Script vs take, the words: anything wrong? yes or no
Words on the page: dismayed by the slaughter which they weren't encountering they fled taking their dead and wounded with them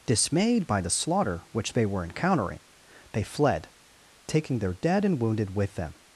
yes